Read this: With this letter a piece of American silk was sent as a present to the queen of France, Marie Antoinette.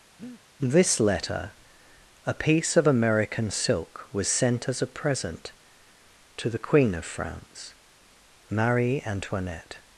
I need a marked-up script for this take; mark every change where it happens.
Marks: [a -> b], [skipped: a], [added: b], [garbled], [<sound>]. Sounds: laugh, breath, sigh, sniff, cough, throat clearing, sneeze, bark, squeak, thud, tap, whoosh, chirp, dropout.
[skipped: With] [breath] this letter a piece of American silk was sent as a present to the queen of France, Marie Antoinette.